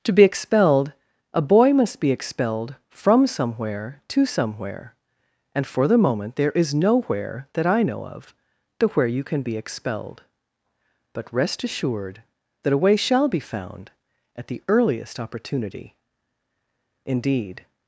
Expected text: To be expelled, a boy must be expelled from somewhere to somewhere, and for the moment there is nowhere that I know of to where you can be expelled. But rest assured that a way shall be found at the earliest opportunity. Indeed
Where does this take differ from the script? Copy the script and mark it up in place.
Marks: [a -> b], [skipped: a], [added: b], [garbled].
To be expelled, a boy must be expelled from somewhere to somewhere, and for the moment there is nowhere that I know of to where you can be expelled. But rest assured that a way shall be found at the earliest opportunity. Indeed